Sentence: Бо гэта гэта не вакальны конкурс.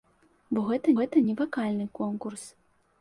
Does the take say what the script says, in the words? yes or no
yes